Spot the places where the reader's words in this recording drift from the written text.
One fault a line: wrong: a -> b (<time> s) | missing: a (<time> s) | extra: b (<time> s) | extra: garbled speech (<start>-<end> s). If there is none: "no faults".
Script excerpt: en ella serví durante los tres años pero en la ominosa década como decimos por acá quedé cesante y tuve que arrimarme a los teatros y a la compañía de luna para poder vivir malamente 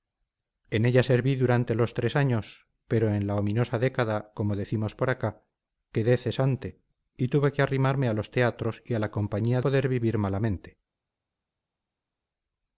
missing: de luna para (9.6 s)